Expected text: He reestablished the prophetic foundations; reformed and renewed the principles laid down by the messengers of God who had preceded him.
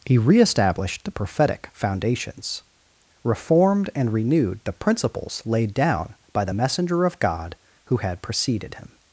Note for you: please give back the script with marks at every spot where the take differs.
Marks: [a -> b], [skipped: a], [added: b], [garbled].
He reestablished the prophetic foundations; reformed and renewed the principles laid down by the [messengers -> messenger] of God who had preceded him.